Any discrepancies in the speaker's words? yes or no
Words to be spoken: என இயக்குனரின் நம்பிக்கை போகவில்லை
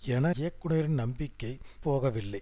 no